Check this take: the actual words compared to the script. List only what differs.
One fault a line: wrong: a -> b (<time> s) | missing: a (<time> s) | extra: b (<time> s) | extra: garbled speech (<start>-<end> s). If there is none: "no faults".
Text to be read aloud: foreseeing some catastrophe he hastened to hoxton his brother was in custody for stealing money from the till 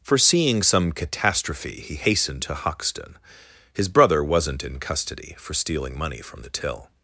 wrong: was -> wasn't (4.2 s)